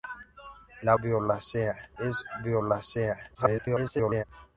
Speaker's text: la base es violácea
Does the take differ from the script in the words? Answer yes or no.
yes